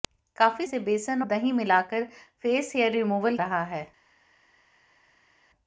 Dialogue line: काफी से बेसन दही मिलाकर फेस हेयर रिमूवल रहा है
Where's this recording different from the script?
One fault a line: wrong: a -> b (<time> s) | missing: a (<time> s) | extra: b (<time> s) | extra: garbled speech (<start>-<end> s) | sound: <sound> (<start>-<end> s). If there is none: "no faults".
no faults